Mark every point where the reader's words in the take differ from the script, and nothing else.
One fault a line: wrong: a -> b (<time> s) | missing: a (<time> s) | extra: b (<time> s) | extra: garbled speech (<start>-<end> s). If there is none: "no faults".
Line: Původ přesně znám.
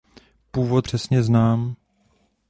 no faults